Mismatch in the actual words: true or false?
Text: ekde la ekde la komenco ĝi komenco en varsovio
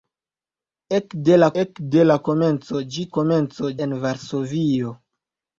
false